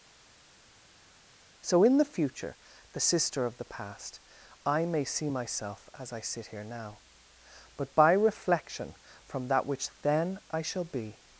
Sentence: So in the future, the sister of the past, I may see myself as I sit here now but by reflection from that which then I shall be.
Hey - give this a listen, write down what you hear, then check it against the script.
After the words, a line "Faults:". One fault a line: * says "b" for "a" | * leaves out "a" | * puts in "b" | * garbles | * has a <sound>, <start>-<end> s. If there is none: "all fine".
So in the future, the sister of the past, I may see myself as I sit here now but by reflection from that which then I shall be.
Faults:
all fine